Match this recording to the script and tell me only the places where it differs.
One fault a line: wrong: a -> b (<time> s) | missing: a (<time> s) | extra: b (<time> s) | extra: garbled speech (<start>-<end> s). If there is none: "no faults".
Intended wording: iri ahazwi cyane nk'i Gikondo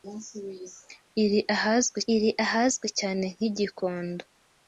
extra: iri ahazwi (2.1 s)